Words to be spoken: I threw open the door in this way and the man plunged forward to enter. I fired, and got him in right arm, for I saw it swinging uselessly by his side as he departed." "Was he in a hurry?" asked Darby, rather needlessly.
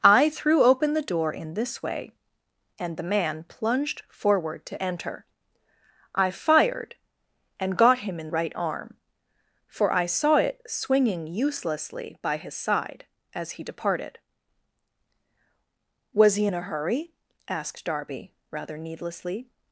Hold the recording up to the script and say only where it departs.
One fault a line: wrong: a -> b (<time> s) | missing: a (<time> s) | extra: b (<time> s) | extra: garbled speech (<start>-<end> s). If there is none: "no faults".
no faults